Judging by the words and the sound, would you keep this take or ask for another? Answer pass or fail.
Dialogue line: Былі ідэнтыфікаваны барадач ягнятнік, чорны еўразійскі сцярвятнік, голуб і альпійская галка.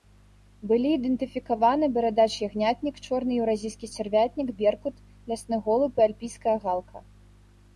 fail